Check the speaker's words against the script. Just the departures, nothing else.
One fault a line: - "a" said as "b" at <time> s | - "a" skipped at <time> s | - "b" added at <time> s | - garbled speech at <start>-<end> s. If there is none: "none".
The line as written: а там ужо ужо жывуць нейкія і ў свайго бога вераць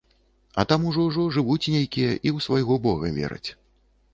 none